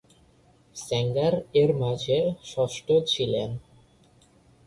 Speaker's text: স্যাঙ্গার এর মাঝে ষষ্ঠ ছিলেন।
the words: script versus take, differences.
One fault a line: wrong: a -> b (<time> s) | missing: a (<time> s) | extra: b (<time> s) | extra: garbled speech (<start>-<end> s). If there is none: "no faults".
no faults